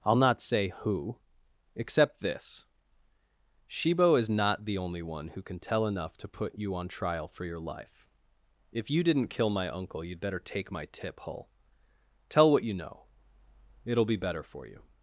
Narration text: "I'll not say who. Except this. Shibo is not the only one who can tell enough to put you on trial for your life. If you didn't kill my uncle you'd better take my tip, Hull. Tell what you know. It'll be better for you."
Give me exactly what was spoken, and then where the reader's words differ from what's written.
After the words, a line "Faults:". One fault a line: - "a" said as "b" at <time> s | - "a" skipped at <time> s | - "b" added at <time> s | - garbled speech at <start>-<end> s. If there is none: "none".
"I'll not say who. Except this. Shibo is not the only one who can tell enough to put you on trial for your life. If you didn't kill my uncle you'd better take my tip, Hull. Tell what you know. It'll be better for you."
Faults:
none